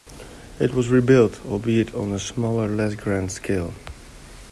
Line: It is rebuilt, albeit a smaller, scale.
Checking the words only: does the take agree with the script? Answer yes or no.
no